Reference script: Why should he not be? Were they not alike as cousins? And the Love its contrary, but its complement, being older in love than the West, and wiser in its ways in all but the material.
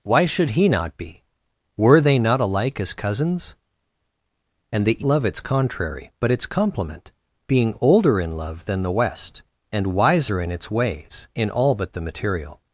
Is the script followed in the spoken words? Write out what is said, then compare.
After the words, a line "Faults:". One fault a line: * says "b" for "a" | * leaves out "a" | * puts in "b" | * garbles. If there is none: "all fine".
Why should he not be? Were they not alike as cousins? And the Love its contrary, but its complement, being older in love than the West, and wiser in its ways in all but the material.
Faults:
all fine